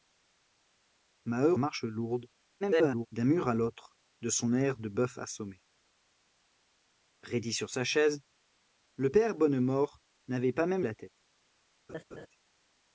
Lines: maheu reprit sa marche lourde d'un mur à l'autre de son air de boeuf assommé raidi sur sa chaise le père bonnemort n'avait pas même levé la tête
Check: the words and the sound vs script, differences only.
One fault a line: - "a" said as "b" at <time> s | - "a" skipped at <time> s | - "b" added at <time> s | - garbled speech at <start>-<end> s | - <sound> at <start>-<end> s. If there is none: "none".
- "reprit sa" skipped at 1.5 s
- garbled speech at 2.6-3.1 s
- "levé" skipped at 10.9 s
- laugh at 11.9-12.3 s